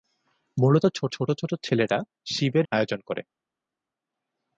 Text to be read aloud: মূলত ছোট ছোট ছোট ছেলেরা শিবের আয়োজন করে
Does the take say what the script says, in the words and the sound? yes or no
yes